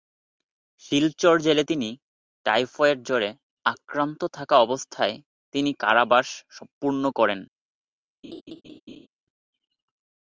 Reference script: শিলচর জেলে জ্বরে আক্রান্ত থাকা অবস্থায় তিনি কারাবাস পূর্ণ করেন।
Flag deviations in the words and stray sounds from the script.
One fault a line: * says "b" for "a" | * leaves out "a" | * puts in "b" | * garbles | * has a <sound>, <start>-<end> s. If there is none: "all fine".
* puts in "তিনি টাইফয়েড"
* has a laugh, 8.2-9.1 s